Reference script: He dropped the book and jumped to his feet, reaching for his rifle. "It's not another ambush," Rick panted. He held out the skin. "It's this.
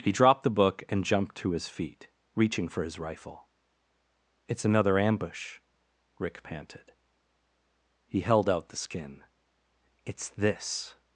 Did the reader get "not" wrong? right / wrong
wrong